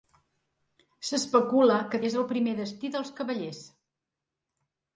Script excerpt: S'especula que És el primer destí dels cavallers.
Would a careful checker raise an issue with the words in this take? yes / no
no